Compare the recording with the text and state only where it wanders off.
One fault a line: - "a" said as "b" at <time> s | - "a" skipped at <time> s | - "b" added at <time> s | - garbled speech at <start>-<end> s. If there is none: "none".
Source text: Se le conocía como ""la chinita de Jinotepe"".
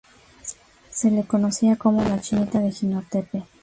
none